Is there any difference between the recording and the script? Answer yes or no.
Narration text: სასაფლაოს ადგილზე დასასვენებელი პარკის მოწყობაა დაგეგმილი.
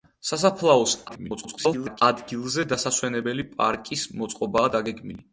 yes